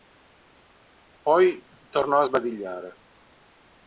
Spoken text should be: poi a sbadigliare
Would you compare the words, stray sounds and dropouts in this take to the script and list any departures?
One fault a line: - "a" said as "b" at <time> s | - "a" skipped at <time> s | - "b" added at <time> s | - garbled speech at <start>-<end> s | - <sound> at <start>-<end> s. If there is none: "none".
- "tornò" added at 1.9 s